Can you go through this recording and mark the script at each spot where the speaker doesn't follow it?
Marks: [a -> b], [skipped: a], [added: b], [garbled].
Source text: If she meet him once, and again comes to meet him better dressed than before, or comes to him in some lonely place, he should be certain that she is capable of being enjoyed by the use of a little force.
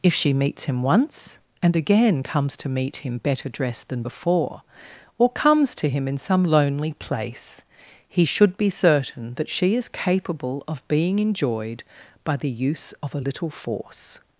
If she [meet -> meets] him once, and again comes to meet him better dressed than before, or comes to him in some lonely place, he should be certain that she is capable of being enjoyed by the use of a little force.